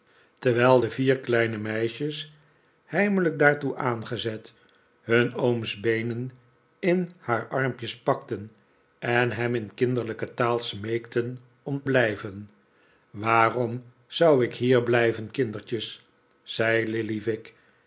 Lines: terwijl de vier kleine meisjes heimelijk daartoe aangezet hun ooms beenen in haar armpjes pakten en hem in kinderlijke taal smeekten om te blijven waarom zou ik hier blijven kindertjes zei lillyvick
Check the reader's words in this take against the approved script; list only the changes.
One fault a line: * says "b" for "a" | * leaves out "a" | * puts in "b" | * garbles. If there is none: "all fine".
* leaves out "te"